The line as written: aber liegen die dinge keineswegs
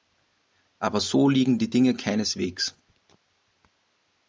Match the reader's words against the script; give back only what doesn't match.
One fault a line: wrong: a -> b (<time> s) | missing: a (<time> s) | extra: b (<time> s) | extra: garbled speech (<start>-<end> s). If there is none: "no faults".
extra: so (1.0 s)